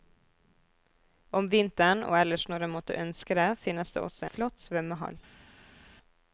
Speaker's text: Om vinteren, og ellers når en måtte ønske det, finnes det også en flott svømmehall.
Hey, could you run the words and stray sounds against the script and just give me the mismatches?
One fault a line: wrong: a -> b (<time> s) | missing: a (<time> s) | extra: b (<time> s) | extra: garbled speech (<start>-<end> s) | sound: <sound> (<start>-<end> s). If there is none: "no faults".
missing: en (4.3 s)